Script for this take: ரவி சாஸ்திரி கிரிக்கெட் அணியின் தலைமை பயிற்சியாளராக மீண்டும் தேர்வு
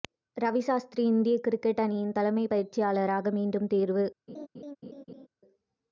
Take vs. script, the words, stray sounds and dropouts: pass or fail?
fail